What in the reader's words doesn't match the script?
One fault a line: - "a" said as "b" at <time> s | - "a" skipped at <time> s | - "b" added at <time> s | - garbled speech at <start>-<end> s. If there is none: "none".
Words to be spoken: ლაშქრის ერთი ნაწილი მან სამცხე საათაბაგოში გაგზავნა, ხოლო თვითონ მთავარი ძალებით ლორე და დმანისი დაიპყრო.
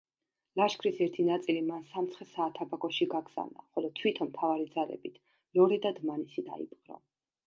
none